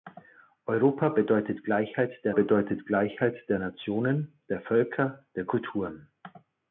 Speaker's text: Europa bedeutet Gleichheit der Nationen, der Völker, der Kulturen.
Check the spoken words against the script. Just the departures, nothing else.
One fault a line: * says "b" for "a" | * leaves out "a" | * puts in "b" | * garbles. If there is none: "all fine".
* puts in "bedeutet Gleichheit der"